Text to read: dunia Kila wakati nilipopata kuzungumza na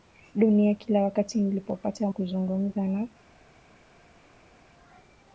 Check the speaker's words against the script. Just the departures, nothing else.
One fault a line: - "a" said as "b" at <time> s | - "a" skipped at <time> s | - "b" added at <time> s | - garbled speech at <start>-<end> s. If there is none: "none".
none